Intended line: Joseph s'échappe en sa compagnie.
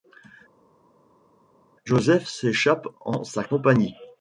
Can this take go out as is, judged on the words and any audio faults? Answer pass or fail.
pass